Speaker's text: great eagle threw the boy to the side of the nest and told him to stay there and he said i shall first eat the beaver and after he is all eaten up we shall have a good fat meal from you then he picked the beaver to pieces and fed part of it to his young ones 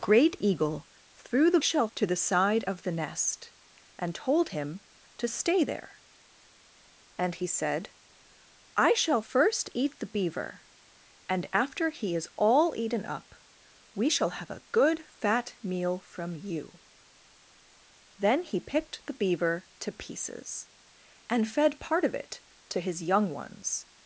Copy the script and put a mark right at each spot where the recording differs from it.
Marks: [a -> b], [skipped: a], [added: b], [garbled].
great eagle threw the [boy -> shall] to the side of the nest and told him to stay there and he said i shall first eat the beaver and after he is all eaten up we shall have a good fat meal from you then he picked the beaver to pieces and fed part of it to his young ones